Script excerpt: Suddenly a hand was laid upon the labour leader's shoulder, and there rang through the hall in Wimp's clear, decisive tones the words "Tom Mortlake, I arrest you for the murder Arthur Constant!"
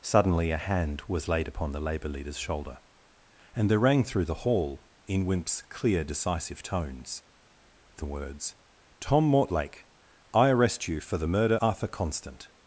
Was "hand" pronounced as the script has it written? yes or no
yes